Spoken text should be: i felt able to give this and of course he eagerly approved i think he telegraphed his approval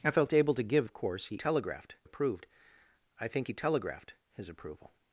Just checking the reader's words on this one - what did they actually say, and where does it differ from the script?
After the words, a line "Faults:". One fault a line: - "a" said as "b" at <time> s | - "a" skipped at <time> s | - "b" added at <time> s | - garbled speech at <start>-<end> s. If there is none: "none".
i felt able to give of course he telegraphed approved i think he telegraphed his approval
Faults:
- "this and" skipped at 0.9 s
- "eagerly" said as "telegraphed" at 1.3 s